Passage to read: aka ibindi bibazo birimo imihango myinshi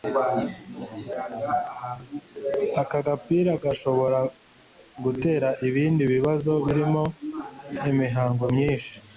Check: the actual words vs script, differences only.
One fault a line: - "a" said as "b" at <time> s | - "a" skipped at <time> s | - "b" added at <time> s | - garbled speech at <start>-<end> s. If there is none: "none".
- "gapira gashobora gutera" added at 3.1 s